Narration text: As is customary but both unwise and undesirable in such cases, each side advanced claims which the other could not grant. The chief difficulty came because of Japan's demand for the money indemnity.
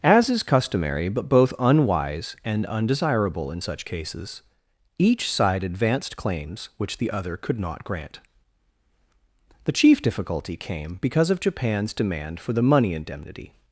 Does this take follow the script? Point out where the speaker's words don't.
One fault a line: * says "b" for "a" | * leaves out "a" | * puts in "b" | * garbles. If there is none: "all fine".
all fine